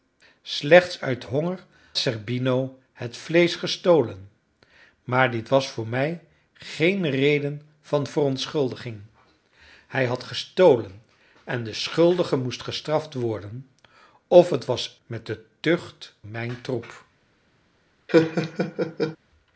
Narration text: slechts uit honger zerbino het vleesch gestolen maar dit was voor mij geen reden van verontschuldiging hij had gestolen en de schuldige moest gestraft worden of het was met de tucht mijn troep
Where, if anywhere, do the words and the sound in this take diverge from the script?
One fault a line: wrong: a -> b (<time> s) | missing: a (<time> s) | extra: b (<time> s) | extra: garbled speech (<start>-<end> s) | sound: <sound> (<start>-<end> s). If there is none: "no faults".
sound: laugh (18.1-19.2 s)